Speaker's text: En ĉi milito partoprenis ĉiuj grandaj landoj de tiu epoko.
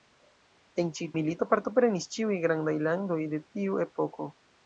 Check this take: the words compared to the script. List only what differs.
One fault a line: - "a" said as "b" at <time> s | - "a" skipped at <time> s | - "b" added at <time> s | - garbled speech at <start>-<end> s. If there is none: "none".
none